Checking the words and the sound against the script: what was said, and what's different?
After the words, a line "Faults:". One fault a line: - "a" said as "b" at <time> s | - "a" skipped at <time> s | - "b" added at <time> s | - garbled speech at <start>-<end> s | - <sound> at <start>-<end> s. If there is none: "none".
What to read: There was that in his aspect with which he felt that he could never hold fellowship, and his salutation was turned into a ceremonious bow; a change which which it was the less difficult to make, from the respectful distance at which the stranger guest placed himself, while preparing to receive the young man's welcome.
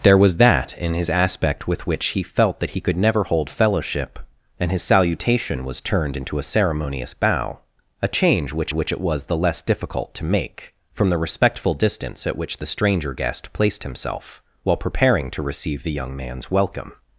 There was that in his aspect with which he felt that he could never hold fellowship, and his salutation was turned into a ceremonious bow; a change which which it was the less difficult to make, from the respectful distance at which the stranger guest placed himself, while preparing to receive the young man's welcome.
Faults:
none